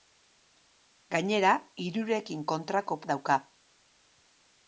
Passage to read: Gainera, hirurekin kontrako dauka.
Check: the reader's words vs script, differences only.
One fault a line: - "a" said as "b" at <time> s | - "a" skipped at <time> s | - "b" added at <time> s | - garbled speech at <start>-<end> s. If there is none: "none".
none